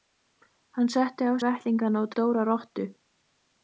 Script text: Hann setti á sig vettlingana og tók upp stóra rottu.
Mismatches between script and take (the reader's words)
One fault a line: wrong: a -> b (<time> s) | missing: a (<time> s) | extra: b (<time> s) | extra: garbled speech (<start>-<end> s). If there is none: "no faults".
missing: sig (1.3 s)
missing: tók upp (2.1 s)